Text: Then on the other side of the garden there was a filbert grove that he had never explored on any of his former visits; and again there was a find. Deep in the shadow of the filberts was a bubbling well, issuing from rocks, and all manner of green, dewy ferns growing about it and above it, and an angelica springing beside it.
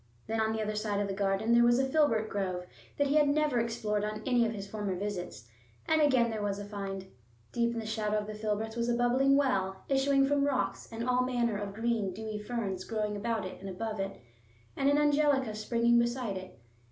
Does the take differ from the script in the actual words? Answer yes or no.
no